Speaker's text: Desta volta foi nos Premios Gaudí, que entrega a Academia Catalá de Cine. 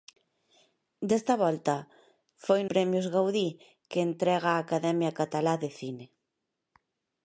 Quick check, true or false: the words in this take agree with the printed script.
false